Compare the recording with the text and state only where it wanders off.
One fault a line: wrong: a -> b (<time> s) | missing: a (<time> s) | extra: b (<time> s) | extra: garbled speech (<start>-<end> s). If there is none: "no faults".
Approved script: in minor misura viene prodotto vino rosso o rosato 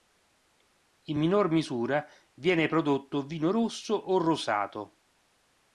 no faults